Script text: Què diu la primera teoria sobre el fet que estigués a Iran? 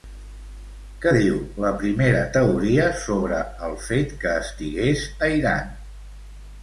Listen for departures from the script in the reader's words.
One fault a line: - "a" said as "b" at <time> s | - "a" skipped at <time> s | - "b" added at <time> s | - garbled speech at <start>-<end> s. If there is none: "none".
none